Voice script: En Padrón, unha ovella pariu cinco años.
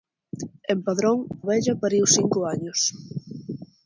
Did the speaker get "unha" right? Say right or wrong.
wrong